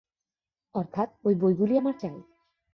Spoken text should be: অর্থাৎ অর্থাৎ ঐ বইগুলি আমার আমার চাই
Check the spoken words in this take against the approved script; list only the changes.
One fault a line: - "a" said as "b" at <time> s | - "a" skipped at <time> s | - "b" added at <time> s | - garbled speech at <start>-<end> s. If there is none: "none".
- "অর্থাৎ" skipped at 1.1 s
- "আমার" skipped at 1.9 s